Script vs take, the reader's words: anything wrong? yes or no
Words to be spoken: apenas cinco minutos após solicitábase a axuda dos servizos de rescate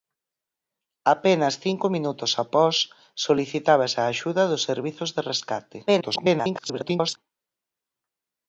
yes